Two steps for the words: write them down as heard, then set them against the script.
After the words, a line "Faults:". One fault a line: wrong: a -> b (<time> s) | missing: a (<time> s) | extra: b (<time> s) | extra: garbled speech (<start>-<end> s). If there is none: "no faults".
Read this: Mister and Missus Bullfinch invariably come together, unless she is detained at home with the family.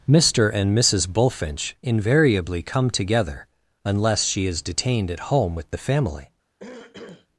Mister and Missus Bullfinch invariably come together, unless she is detained at home with the family.
Faults:
no faults